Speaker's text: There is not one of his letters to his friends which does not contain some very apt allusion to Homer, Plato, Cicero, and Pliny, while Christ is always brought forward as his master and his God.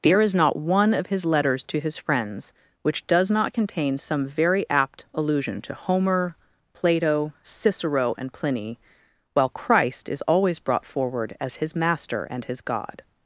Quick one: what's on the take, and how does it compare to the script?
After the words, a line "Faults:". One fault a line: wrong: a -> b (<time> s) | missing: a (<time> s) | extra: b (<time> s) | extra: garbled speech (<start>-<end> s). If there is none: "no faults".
There is not one of his letters to his friends which does not contain some very apt allusion to Homer, Plato, Cicero, and Pliny, while Christ is always brought forward as his master and his God.
Faults:
no faults